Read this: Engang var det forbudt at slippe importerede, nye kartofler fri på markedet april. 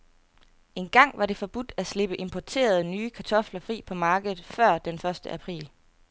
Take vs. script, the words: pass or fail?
fail